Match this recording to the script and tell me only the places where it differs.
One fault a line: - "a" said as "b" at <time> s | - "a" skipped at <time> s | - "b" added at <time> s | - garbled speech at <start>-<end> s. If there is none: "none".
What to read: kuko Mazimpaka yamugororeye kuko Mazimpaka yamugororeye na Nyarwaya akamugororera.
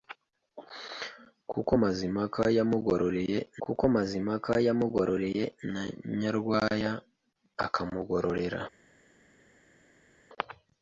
none